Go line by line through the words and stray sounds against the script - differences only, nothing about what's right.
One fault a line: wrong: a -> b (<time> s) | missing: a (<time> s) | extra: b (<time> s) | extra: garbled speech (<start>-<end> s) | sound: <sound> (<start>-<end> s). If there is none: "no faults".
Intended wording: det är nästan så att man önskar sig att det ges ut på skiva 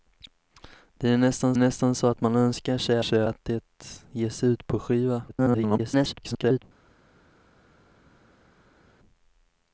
extra: nästan (1.6 s)
extra: sig (3.0 s)
extra: garbled speech (5.3-6.6 s)